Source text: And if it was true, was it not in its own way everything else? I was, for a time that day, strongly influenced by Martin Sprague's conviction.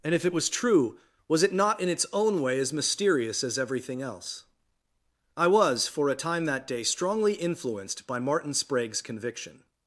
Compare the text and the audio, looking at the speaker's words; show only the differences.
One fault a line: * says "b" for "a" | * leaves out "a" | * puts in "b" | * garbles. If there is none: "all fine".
* puts in "as mysterious as"